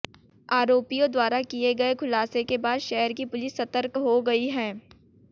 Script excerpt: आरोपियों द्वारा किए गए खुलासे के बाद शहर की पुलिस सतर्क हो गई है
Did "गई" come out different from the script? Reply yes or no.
no